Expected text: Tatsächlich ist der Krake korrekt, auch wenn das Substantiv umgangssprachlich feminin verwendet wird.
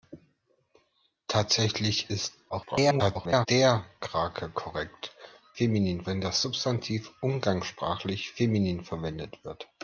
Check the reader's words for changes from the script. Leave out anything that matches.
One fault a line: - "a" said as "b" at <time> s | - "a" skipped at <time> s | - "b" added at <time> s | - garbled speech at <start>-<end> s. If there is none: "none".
- garbled speech at 2.5-3.5 s
- "auch" said as "feminin" at 5.5 s